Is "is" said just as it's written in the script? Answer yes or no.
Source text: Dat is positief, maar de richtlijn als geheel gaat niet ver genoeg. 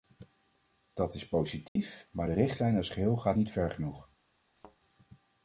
yes